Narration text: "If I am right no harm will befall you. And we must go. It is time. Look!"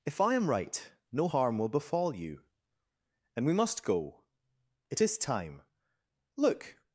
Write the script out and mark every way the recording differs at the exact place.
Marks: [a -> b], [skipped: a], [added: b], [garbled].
"If I am right no harm will befall you. And we must go. It is time. Look!"